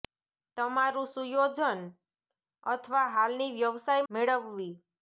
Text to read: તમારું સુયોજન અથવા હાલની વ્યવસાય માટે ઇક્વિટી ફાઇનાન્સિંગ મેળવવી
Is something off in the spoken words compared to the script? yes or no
yes